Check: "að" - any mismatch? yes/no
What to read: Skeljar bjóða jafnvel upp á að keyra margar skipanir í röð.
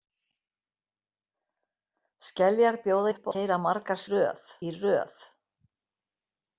yes